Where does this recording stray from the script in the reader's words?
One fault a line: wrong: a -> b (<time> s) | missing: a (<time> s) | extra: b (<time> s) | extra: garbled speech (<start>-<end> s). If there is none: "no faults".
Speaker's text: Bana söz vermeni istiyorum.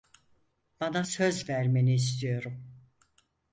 no faults